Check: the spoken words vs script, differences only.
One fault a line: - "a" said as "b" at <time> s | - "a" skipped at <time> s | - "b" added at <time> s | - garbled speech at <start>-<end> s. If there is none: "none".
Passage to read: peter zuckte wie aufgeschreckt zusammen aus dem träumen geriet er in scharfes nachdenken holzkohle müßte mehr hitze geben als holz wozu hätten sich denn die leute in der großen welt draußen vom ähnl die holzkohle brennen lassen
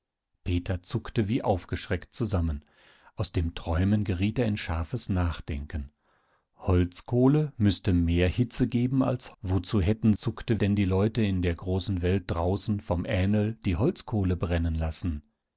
- "holz" skipped at 9.4 s
- "sich" said as "zuckte" at 10.1 s